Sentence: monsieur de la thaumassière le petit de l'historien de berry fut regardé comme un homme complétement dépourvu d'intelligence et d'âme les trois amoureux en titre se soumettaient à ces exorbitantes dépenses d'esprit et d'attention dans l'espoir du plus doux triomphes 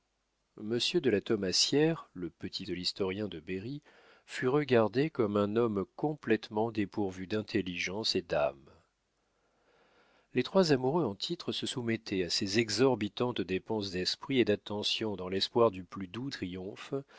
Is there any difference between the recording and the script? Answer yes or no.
no